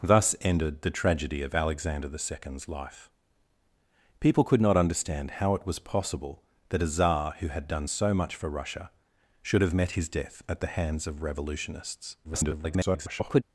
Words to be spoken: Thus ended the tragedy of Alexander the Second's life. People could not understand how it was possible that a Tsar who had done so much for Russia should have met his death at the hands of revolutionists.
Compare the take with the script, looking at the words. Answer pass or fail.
fail